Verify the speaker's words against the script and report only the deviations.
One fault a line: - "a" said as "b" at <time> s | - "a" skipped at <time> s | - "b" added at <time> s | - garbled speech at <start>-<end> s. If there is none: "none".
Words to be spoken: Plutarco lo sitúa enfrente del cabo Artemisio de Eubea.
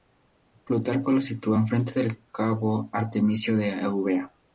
none